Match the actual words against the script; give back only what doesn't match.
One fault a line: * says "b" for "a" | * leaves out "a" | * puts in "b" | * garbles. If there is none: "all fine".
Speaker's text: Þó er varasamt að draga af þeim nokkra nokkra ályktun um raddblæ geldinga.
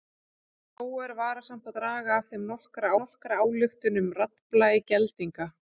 all fine